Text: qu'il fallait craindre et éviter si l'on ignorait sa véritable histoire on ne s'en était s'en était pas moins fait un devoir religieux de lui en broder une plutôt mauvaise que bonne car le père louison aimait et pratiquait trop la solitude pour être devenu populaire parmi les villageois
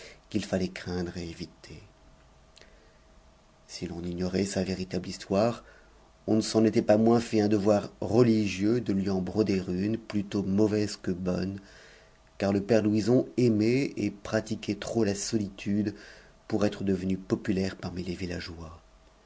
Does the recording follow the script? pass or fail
fail